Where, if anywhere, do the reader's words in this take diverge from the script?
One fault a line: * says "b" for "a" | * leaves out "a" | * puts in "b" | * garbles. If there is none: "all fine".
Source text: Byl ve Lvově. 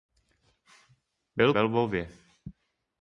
all fine